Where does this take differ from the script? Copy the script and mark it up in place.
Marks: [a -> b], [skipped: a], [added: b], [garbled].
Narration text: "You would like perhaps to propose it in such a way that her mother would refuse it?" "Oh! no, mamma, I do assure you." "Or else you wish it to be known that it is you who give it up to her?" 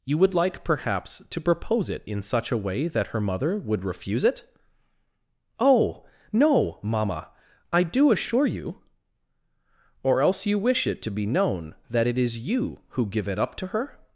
"You would like perhaps to propose it in such a way that her mother would refuse it?" "Oh! no, mamma, I do assure you." "Or else you wish it to be known that it is you who give it up to her?"